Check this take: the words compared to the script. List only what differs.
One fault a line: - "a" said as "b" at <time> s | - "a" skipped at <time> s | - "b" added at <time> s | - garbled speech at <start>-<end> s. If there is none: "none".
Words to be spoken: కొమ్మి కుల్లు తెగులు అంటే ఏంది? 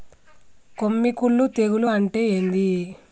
none